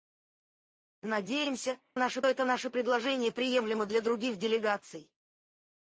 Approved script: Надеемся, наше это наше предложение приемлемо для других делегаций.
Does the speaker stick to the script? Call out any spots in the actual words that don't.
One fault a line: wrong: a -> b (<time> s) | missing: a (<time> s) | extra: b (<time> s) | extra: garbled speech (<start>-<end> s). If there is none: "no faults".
no faults